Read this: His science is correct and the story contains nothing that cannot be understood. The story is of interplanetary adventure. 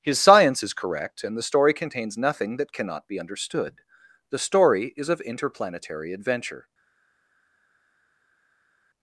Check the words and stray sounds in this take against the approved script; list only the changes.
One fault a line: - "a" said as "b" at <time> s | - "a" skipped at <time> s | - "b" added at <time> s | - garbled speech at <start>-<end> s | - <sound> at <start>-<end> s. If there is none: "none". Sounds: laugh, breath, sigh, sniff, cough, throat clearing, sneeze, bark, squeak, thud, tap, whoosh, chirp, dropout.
none